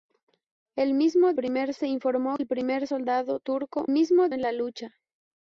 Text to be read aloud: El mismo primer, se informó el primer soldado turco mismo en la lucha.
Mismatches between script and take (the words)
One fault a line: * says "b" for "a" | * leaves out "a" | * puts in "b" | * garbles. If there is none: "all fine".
all fine